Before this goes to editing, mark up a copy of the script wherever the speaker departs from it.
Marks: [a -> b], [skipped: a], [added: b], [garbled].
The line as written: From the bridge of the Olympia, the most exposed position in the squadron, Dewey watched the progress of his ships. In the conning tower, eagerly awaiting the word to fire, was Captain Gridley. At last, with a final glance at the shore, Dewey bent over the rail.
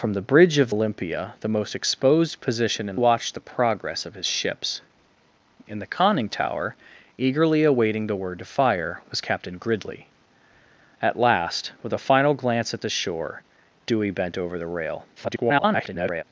From the bridge of [skipped: the] Olympia, the most exposed position in [skipped: the squadron, Dewey] watched the progress of his ships. In the conning tower, eagerly awaiting the word to fire, was Captain Gridley. At last, with a final glance at the shore, Dewey bent over the rail. [garbled]